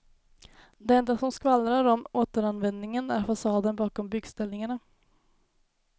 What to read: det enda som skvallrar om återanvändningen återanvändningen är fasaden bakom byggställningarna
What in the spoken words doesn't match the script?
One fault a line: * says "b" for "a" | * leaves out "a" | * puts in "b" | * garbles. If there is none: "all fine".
* leaves out "återanvändningen"